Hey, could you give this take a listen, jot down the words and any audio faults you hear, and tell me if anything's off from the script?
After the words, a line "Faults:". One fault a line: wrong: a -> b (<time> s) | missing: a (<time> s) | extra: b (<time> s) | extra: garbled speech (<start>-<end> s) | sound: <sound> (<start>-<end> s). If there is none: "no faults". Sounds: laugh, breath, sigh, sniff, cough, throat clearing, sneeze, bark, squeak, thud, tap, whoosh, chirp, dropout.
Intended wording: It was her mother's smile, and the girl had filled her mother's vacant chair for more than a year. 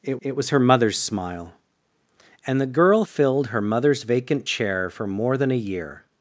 It it was her mother's smile, and the girl filled her mother's vacant chair for more than a year.
Faults:
extra: it (0.2 s)
missing: had (3.0 s)